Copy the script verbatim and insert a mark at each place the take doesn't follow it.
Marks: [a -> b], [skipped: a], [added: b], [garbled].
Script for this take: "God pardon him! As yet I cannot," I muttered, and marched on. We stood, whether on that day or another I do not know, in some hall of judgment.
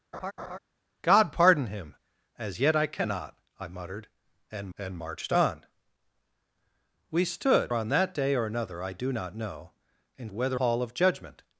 "God pardon him! As yet I cannot," I muttered, and [added: and] marched on. We stood, [skipped: whether] on that day or another I do not know, in [some -> whether] hall of judgment.